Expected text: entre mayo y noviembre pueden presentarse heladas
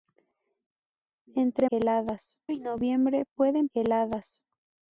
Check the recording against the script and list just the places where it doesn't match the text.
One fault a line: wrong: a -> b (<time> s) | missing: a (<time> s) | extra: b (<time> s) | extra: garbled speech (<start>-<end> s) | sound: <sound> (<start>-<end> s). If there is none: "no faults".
wrong: mayo -> heladas (1.7 s)
missing: presentarse (3.7 s)